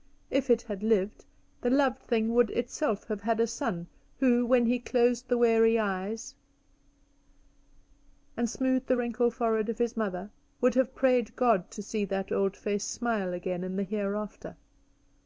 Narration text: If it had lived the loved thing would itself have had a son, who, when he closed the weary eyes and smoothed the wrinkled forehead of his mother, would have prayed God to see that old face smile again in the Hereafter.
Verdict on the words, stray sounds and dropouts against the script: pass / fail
pass